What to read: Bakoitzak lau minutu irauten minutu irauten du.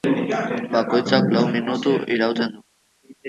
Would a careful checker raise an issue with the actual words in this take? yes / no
yes